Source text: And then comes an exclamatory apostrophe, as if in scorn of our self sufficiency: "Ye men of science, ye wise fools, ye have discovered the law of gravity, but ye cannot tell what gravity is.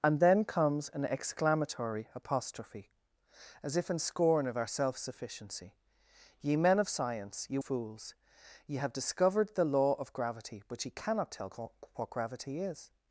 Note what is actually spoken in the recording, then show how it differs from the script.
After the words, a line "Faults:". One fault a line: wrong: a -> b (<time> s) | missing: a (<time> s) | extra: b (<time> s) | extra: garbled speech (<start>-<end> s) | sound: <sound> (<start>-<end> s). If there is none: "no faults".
And then comes an exclamatory apostrophe, as if in scorn of our self sufficiency: "Ye men of science, ye fools, ye have discovered the law of gravity, but ye cannot tell what gravity is.
Faults:
missing: wise (7.6 s)